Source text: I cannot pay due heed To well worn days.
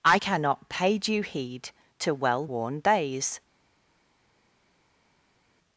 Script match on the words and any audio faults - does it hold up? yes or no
yes